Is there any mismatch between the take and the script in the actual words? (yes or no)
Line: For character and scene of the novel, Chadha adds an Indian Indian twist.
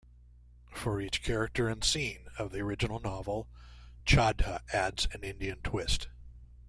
yes